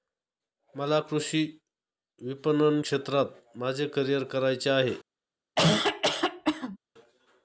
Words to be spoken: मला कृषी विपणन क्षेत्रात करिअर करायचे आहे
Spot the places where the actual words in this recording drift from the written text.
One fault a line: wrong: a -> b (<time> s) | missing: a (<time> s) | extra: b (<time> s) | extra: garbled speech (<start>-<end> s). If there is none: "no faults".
extra: माझे (3.6 s)